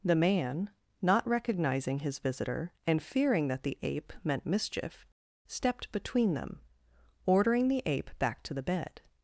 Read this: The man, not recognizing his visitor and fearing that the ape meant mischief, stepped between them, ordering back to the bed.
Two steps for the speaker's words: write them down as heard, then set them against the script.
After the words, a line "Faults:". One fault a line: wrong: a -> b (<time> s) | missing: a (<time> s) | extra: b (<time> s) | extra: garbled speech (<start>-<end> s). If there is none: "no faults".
The man, not recognizing his visitor and fearing that the ape meant mischief, stepped between them, ordering the ape back to the bed.
Faults:
extra: the ape (7.7 s)